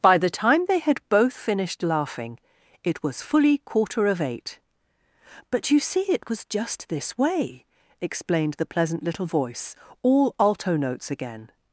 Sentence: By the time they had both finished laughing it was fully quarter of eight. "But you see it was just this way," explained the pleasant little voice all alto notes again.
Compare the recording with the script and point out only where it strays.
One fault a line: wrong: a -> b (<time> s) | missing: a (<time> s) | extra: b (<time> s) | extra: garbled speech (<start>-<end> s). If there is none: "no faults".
no faults